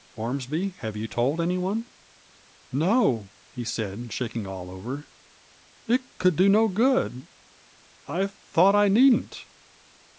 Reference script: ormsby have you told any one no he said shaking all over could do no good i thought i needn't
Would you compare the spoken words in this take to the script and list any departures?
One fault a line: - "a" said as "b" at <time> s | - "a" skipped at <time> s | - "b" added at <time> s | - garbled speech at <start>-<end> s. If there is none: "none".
- "it" added at 5.8 s